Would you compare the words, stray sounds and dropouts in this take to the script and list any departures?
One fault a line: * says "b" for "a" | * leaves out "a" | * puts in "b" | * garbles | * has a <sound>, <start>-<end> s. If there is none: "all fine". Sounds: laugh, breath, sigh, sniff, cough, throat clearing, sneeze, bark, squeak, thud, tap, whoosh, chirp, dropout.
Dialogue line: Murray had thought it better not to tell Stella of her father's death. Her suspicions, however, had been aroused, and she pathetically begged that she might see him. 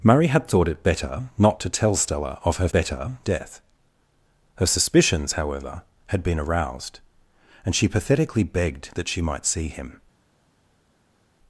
* says "better" for "father's"